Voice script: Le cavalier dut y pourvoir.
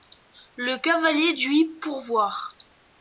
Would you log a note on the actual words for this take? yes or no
no